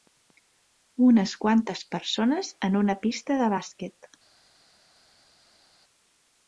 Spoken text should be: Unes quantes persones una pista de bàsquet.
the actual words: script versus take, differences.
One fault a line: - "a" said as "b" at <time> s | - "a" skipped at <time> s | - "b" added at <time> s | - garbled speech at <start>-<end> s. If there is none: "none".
- "en" added at 2.7 s